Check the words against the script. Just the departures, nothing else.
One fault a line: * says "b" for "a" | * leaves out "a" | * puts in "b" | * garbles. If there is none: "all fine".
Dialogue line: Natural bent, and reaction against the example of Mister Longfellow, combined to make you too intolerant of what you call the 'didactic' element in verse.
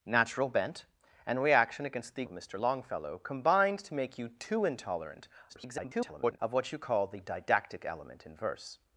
* leaves out "example"
* garbles